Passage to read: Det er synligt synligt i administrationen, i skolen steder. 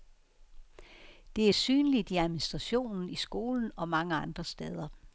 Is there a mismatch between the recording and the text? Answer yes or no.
yes